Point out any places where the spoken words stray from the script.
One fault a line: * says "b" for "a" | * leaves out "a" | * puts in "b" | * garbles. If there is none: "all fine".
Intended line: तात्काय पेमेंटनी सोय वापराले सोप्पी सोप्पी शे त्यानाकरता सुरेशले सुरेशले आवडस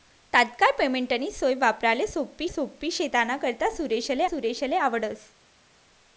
all fine